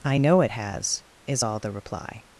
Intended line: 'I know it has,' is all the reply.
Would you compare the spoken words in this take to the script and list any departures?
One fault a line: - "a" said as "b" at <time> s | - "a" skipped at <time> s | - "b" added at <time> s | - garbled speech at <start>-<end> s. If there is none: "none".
none